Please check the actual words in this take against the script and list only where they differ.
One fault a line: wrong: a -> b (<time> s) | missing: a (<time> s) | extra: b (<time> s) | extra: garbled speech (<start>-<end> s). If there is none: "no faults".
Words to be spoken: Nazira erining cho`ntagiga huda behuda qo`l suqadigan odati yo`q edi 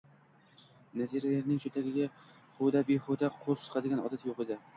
no faults